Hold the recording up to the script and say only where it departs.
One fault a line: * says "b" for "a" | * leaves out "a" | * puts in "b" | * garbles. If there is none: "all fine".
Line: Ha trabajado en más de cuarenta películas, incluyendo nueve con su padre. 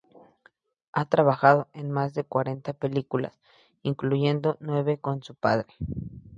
all fine